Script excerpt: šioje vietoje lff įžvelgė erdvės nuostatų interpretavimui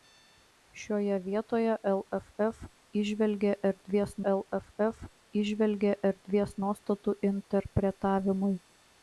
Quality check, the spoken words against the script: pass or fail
fail